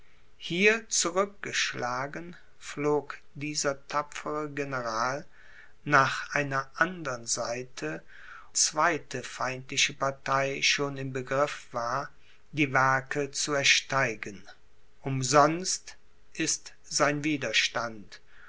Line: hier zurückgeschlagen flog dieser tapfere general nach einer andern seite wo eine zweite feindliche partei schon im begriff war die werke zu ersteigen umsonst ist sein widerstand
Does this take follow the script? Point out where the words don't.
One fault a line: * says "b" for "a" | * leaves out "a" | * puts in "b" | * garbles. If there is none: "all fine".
* leaves out "wo eine"